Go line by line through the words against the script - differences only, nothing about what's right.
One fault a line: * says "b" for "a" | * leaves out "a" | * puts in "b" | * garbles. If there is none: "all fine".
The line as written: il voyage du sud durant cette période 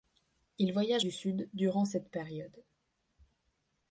all fine